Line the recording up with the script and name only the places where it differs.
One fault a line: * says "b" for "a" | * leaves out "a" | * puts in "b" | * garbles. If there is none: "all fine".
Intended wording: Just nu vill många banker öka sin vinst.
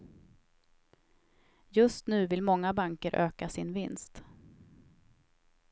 all fine